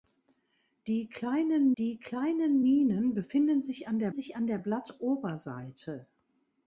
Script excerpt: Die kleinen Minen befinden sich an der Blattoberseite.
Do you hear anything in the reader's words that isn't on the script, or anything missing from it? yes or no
yes